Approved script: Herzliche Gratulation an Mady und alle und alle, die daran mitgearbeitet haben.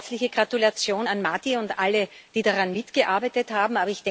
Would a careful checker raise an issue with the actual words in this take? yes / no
yes